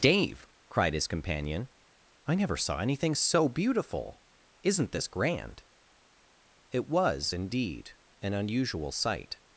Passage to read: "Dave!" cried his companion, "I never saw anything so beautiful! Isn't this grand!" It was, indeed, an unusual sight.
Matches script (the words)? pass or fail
pass